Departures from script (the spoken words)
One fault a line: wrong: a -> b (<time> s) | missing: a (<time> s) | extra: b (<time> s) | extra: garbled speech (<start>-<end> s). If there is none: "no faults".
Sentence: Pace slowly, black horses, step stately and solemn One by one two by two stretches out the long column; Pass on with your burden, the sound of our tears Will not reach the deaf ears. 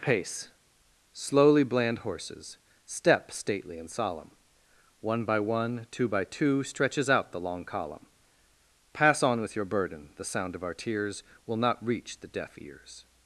wrong: black -> bland (1.6 s)